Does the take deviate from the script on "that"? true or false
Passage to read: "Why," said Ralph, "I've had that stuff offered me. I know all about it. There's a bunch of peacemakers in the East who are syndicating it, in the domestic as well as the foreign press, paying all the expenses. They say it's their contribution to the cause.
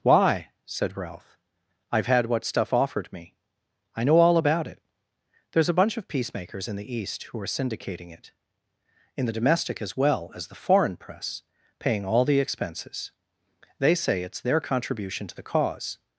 true